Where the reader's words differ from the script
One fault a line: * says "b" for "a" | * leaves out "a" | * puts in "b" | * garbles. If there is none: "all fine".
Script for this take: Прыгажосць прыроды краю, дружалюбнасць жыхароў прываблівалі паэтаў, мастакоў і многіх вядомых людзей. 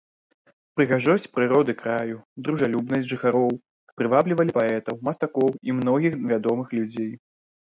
all fine